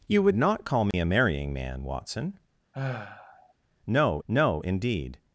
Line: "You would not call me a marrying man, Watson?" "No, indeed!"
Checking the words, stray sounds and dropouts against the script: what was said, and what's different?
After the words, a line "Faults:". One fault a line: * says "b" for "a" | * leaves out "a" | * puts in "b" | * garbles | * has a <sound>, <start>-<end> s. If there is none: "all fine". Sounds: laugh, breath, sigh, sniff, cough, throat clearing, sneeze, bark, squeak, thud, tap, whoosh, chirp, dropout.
"You would not call me a marrying man, Watson?" "No no, indeed!"
Faults:
* has a dropout, 0.9-0.9 s
* has a sigh, 2.7-3.5 s
* puts in "no"